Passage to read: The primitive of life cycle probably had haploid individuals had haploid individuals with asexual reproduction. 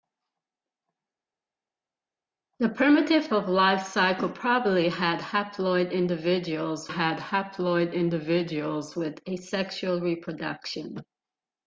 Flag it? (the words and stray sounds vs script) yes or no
no